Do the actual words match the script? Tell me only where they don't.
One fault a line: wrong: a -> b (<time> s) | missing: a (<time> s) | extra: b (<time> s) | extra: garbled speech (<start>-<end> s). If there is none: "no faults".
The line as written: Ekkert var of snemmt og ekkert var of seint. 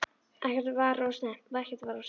no faults